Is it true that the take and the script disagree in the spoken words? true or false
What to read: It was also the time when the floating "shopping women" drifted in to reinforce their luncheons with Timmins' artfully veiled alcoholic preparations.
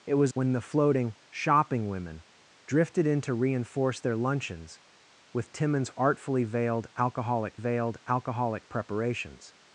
true